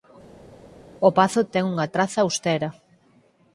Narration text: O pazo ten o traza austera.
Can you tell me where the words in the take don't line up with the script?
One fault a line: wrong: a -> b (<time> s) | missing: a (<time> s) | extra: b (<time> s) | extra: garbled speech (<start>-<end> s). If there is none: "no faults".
wrong: o -> unha (1.7 s)